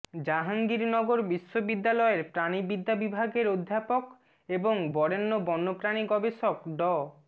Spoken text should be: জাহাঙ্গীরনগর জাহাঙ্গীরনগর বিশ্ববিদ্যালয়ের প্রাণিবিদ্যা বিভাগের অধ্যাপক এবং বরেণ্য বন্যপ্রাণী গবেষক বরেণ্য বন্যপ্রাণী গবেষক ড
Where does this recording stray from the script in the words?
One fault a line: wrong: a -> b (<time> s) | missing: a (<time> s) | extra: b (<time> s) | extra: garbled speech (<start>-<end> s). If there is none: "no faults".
missing: জাহাঙ্গীরনগর (1.2 s)
missing: বরেণ্য বন্যপ্রাণী গবেষক (6.6 s)